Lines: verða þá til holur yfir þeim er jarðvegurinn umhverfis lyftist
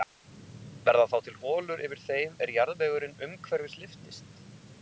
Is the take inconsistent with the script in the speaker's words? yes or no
no